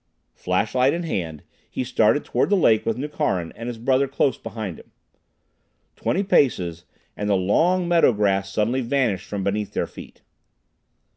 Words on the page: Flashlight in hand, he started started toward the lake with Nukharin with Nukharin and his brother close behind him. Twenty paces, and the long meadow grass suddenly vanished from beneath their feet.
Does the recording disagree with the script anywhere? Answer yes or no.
yes